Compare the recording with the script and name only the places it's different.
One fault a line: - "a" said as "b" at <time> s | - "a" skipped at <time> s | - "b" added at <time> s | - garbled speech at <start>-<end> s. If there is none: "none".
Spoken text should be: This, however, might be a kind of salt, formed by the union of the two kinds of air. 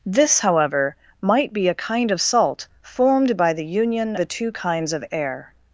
- "of" skipped at 4.2 s